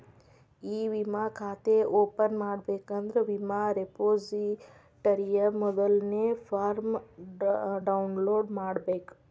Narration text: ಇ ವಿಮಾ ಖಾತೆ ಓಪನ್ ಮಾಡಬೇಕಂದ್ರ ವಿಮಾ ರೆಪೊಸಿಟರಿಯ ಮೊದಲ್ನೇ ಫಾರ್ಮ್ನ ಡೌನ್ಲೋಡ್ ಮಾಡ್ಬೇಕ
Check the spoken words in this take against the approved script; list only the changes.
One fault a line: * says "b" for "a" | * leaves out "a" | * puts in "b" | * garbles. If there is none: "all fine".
all fine